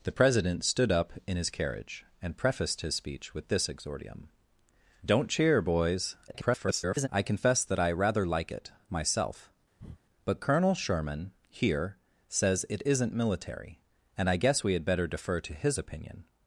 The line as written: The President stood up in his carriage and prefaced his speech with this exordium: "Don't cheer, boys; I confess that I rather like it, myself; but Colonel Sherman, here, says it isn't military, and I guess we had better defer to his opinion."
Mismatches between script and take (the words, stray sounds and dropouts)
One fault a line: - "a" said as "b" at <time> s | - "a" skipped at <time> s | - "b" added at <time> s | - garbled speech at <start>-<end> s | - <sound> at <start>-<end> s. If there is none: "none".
- garbled speech at 6.3-7.1 s
- breath at 9.8-10.0 s